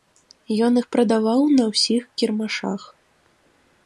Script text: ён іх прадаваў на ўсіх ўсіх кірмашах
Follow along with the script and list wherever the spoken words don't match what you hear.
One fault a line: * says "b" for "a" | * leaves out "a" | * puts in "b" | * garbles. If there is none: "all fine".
* leaves out "ўсіх"